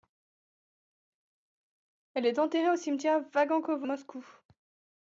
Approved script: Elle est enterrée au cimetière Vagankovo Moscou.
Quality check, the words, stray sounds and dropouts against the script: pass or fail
pass